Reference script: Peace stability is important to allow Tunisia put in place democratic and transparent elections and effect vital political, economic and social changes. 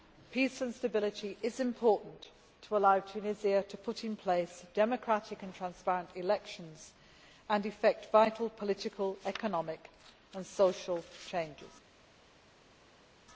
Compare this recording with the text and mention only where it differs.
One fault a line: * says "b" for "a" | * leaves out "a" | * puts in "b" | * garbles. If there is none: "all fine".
* puts in "and"
* puts in "to"